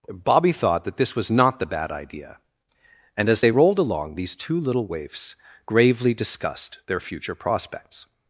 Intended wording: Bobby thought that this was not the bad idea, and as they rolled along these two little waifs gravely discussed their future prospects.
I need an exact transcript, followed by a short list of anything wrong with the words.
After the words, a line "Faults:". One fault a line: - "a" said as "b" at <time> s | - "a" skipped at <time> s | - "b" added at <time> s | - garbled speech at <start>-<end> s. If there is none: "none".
Bobby thought that this was not the bad idea, and as they rolled along these two little waifs gravely discussed their future prospects.
Faults:
none